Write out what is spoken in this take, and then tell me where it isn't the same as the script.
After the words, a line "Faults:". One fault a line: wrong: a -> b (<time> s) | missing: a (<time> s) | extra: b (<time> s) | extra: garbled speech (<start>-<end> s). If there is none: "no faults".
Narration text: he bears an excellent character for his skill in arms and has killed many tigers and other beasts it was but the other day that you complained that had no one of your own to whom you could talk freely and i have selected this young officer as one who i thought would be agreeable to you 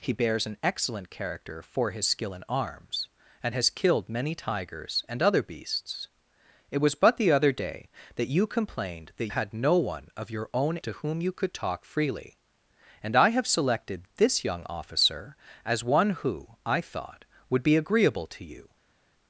he bears an excellent character for his skill in arms and has killed many tigers and other beasts it was but the other day that you complained that had no one of your own to whom you could talk freely and i have selected this young officer as one who i thought would be agreeable to you
Faults:
no faults